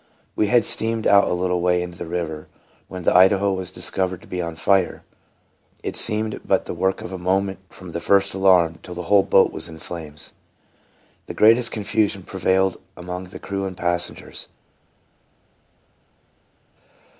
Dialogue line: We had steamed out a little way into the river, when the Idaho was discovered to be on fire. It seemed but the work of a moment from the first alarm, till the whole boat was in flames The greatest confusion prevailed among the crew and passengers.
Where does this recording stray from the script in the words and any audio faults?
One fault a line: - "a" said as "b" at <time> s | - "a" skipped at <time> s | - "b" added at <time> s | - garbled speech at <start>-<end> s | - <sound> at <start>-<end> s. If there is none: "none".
none